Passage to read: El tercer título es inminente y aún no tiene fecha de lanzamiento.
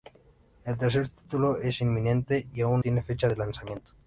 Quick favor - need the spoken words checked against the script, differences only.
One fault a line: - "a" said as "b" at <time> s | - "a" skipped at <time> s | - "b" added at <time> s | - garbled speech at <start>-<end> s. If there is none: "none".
- "no" skipped at 2.8 s